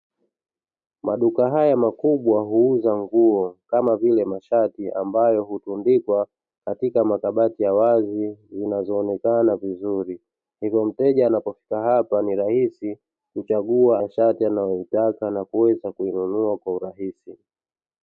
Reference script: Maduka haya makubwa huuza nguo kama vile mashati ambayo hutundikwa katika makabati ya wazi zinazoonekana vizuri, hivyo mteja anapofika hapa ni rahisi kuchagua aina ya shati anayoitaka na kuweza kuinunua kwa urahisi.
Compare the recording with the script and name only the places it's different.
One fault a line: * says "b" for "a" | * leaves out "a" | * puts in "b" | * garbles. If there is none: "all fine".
* leaves out "aina"